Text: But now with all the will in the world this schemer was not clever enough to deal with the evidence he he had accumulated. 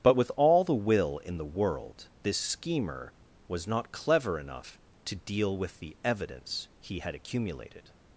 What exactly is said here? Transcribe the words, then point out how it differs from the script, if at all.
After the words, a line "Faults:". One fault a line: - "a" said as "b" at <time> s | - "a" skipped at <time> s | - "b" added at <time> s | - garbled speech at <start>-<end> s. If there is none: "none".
But with all the will in the world this schemer was not clever enough to deal with the evidence he had accumulated.
Faults:
- "now" skipped at 0.2 s
- "he" skipped at 7.0 s